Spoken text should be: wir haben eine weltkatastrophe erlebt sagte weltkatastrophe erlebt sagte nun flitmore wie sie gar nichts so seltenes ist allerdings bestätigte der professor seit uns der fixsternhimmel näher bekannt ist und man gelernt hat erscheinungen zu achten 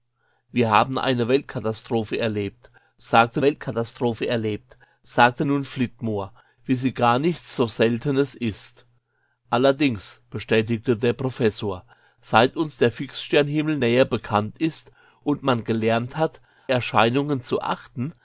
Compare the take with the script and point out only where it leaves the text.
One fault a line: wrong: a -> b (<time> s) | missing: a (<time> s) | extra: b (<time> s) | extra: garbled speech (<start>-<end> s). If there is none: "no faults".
no faults